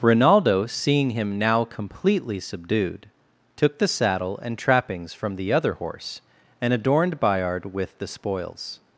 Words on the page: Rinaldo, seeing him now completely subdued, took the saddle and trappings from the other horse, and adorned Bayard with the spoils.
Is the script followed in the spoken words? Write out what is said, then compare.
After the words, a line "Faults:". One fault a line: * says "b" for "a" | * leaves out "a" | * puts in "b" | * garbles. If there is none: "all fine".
Rinaldo, seeing him now completely subdued, took the saddle and trappings from the other horse, and adorned Bayard with the spoils.
Faults:
all fine